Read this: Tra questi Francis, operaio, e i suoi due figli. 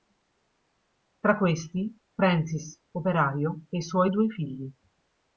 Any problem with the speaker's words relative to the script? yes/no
no